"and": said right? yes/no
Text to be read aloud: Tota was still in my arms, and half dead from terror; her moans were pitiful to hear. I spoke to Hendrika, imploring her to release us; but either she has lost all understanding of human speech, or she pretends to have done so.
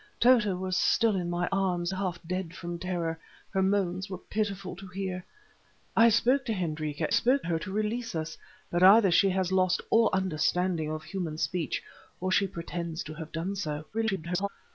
no